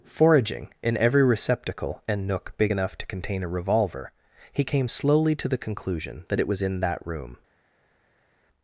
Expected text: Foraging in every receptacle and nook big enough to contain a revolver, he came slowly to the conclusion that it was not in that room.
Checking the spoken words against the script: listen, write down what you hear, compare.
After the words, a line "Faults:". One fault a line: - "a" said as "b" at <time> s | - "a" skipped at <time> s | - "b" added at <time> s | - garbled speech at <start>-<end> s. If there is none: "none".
Foraging in every receptacle and nook big enough to contain a revolver, he came slowly to the conclusion that it was in that room.
Faults:
- "not" skipped at 6.6 s